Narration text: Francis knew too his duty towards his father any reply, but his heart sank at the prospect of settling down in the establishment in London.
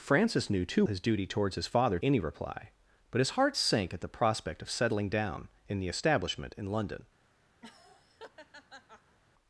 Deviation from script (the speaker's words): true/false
false